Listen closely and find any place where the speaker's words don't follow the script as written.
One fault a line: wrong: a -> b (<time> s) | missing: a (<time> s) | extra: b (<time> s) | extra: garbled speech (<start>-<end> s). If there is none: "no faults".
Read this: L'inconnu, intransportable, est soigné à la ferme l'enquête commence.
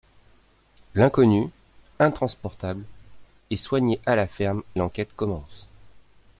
no faults